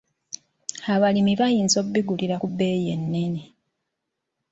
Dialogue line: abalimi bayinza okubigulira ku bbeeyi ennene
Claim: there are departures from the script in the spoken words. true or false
false